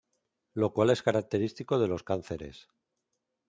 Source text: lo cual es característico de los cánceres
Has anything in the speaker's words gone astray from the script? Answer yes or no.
no